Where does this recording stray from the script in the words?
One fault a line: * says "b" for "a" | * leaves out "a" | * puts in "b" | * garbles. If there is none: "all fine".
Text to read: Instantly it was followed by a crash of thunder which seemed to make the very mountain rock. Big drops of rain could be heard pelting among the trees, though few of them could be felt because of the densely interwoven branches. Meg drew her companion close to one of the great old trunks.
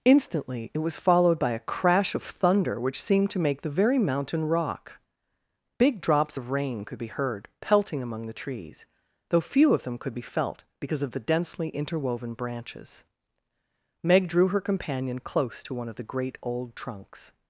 all fine